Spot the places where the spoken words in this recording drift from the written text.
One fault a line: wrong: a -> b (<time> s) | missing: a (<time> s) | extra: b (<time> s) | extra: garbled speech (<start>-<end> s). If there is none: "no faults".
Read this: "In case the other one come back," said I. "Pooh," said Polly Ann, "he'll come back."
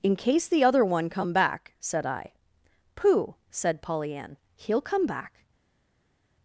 no faults